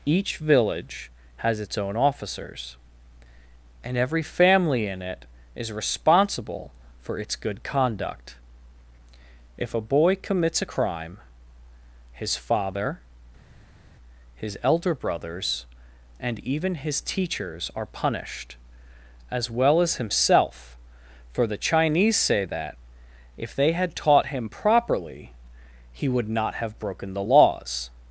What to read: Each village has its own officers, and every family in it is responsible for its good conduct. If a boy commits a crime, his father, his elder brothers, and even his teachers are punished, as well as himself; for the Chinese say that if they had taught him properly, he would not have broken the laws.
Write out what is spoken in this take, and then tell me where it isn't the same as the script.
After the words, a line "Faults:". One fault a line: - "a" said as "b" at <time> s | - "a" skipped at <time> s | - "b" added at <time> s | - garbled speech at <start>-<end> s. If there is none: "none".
Each village has its own officers, and every family in it is responsible for its good conduct. If a boy commits a crime, his father, his elder brothers, and even his teachers are punished, as well as himself; for the Chinese say that if they had taught him properly, he would not have broken the laws.
Faults:
none